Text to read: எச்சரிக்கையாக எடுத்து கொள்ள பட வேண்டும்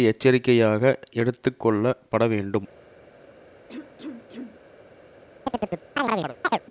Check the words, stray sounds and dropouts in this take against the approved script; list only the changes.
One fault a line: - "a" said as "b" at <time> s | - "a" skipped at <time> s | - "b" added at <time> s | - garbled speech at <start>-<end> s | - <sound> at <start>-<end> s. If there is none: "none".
- cough at 3.7-4.6 s
- chirp at 5.5-6.6 s